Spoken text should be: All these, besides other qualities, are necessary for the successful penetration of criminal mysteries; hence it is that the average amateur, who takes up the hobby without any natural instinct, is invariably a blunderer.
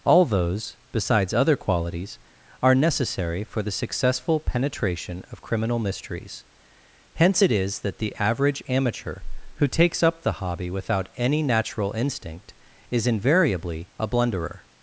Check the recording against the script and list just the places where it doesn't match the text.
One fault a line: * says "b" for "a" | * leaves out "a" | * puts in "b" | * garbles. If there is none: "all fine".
* says "those" for "these"